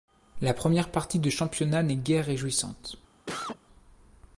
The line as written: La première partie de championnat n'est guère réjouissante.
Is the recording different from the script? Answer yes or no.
no